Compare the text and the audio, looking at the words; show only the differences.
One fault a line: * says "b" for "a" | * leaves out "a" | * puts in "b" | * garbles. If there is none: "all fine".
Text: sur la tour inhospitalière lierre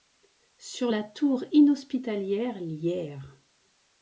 all fine